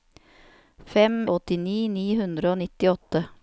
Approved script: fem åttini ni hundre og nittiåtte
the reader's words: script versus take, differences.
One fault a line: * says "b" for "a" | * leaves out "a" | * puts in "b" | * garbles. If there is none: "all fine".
all fine